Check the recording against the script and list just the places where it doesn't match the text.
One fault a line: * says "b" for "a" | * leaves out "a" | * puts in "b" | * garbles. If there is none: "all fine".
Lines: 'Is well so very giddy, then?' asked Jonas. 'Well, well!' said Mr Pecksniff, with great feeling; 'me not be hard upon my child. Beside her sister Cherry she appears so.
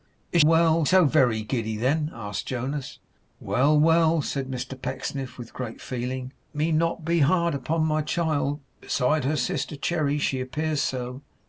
all fine